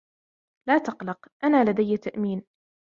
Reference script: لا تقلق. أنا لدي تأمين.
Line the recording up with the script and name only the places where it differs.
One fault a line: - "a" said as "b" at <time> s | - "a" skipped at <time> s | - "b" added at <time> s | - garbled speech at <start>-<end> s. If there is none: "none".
none